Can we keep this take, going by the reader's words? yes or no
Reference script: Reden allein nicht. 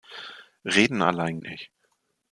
yes